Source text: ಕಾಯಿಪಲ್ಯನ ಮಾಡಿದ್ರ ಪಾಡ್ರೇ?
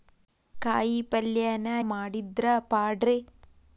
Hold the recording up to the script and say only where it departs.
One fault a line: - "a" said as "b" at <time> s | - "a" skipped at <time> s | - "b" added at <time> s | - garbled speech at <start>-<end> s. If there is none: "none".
none